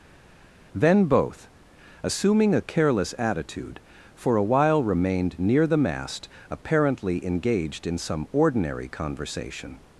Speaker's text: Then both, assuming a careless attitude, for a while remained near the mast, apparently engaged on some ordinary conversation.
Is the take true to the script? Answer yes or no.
no